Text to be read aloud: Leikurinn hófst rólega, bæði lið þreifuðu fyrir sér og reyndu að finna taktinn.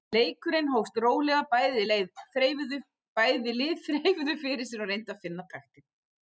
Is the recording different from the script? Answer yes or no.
no